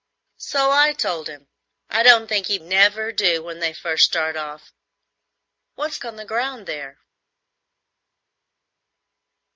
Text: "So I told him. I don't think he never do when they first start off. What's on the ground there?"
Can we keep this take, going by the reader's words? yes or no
yes